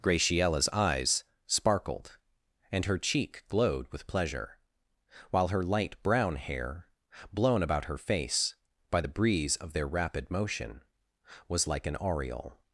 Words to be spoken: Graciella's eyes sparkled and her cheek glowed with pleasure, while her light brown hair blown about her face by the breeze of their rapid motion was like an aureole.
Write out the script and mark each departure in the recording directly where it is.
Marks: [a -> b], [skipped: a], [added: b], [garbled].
Graciella's eyes sparkled and her cheek glowed with pleasure, while her light brown hair blown about her face by the breeze of their rapid motion was like an aureole.